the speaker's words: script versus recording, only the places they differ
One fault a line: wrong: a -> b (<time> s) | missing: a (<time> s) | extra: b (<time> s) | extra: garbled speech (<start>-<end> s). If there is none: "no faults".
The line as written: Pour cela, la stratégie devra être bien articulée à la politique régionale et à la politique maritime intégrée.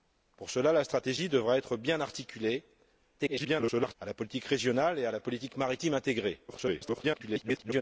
extra: garbled speech (3.2-3.9 s)
extra: garbled speech (6.5-7.8 s)